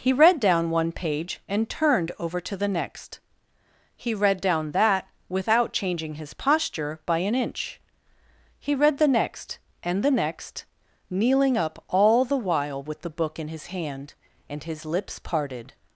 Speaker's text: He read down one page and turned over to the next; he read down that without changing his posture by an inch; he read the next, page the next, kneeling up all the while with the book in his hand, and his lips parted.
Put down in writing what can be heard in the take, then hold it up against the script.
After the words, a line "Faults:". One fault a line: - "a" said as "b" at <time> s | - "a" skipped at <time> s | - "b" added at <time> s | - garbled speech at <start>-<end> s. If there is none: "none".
He read down one page and turned over to the next; he read down that without changing his posture by an inch; he read the next, and the next, kneeling up all the while with the book in his hand, and his lips parted.
Faults:
- "page" said as "and" at 9.8 s